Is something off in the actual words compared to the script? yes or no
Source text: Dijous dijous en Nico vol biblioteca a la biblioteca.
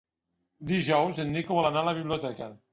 yes